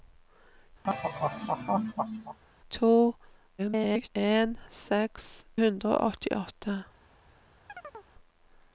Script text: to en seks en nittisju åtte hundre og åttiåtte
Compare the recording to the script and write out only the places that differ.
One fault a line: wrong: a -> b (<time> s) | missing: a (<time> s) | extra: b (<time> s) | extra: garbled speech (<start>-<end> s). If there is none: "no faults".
extra: garbled speech (3.6-4.1 s)
missing: en nittisju åtte (5.5 s)